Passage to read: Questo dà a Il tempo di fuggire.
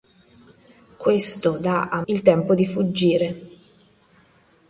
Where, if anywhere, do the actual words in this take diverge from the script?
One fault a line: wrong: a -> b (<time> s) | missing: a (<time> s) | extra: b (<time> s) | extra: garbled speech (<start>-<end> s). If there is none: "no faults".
no faults